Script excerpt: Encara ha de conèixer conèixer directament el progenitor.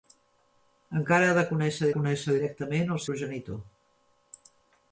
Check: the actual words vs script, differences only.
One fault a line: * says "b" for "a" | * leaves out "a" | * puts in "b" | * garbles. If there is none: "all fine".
all fine